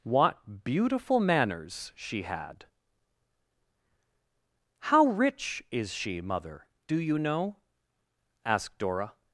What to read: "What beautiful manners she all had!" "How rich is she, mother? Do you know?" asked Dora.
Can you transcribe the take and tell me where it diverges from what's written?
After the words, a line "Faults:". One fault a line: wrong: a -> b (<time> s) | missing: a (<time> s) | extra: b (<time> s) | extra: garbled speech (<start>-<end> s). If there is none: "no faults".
"What beautiful manners she had!" "How rich is she, mother? Do you know?" asked Dora.
Faults:
missing: all (2.2 s)